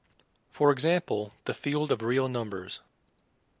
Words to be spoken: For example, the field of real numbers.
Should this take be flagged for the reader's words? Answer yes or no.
no